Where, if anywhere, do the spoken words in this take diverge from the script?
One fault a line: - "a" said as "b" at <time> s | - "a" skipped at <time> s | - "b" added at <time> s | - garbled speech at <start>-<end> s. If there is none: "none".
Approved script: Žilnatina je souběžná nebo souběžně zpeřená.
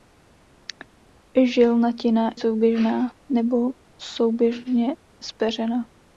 - "je" skipped at 2.3 s